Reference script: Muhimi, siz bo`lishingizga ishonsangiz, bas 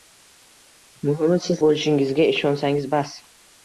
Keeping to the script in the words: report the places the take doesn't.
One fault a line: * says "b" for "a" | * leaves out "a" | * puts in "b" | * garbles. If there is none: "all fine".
all fine